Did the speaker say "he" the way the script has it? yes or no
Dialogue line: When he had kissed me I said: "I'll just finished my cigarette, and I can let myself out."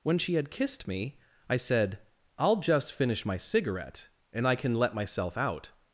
no